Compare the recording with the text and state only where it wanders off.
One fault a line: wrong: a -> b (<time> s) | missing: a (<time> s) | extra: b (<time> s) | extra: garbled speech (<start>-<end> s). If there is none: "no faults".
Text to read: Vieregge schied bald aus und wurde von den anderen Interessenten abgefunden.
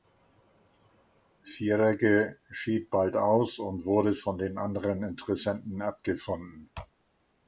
no faults